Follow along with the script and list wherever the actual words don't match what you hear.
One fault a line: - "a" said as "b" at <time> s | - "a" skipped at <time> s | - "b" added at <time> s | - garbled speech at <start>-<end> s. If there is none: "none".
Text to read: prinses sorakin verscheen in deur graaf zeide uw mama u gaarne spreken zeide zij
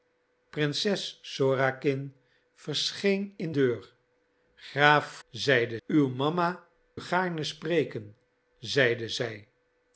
none